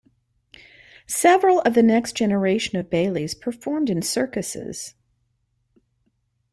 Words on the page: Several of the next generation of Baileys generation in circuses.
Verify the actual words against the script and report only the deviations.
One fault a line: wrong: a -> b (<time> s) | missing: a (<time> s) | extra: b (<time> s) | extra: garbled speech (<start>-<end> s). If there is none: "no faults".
wrong: generation -> performed (3.3 s)